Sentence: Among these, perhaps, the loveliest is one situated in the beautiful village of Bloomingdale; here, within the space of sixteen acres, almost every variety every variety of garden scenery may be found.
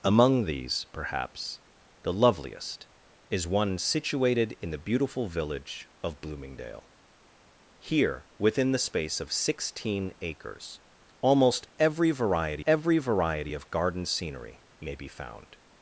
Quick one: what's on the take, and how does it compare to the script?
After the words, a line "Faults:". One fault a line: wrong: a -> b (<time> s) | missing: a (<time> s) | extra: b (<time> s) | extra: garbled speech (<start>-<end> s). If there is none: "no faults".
Among these, perhaps, the loveliest is one situated in the beautiful village of Bloomingdale; here, within the space of sixteen acres, almost every variety every variety of garden scenery may be found.
Faults:
no faults